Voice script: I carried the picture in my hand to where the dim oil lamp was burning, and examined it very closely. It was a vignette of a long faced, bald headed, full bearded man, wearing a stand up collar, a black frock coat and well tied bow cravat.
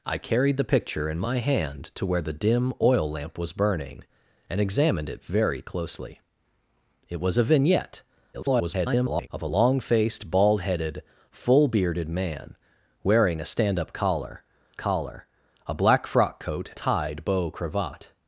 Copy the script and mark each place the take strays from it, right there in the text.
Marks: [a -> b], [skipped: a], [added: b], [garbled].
I carried the picture in my hand to where the dim oil lamp was burning, and examined it very closely. It was a vignette [garbled] of a long faced, bald headed, full bearded man, wearing a stand up collar, [added: collar] a black frock coat [skipped: and well] tied bow cravat.